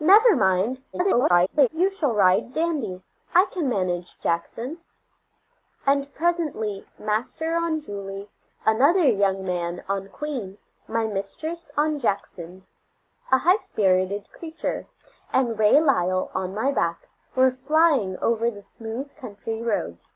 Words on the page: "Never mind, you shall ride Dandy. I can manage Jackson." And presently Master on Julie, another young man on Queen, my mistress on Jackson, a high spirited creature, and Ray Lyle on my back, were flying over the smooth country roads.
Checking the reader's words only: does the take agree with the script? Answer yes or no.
no